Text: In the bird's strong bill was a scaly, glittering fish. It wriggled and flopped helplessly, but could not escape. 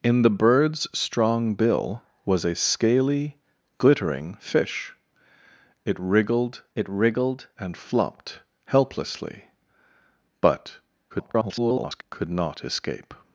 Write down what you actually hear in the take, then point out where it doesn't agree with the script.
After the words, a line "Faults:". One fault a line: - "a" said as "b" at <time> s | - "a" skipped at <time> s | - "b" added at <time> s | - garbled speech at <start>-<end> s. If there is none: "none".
In the bird's strong bill was a scaly, glittering fish. It wriggled it wriggled and flopped helplessly, but [garbled] could not escape.
Faults:
- "it wriggled" added at 6.8 s
- garbled speech at 11.1-12.0 s